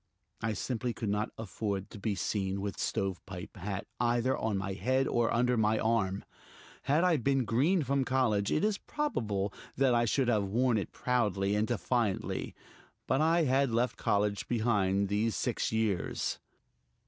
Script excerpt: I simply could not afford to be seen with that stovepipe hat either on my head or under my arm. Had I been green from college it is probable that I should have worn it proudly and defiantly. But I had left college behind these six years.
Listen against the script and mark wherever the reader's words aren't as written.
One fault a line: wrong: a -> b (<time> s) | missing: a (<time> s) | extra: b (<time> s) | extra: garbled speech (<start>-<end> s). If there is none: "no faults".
missing: that (2.8 s)